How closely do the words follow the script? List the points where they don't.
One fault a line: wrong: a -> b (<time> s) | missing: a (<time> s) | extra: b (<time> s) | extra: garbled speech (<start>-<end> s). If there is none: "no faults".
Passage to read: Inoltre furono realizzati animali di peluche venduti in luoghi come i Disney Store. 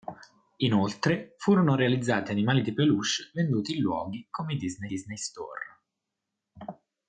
extra: Disney (4.9 s)